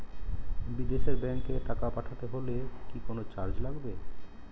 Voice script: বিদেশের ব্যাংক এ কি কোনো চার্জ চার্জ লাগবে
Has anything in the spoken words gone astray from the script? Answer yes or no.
yes